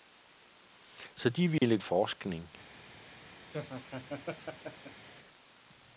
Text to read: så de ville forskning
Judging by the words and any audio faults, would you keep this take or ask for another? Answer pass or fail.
fail